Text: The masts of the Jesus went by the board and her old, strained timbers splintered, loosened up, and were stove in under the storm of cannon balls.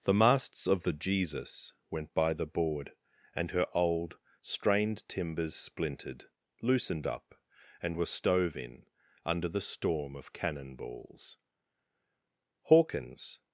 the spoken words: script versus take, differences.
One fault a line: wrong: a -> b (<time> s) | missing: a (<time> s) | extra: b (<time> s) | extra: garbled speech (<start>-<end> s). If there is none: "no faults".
extra: Hawkins (12.6 s)